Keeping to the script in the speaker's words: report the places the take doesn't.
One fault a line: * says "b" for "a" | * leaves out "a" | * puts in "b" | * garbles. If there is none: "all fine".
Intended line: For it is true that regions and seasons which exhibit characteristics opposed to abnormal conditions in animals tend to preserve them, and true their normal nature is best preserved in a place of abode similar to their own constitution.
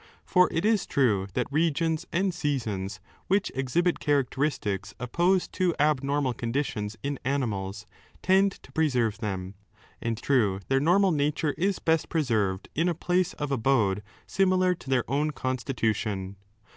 all fine